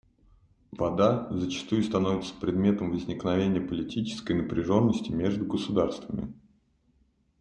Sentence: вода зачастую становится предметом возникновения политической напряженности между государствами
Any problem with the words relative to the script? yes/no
no